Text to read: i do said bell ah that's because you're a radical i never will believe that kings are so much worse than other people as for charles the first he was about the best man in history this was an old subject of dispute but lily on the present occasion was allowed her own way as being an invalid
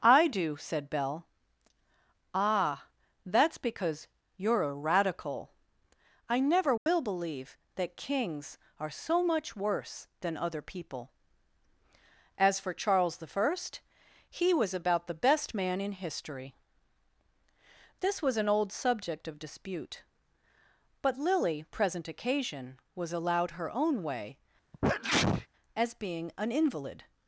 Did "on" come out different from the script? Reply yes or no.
yes